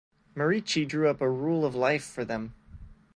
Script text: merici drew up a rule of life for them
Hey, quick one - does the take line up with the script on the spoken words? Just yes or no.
yes